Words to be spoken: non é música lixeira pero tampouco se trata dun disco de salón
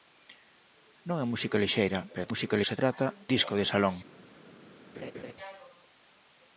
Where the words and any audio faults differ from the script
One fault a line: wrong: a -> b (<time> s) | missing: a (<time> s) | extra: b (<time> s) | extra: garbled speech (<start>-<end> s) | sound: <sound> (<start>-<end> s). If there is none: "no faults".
wrong: tampouco -> música (2.3 s)
missing: dun (3.0 s)
sound: laugh (4.9-5.3 s)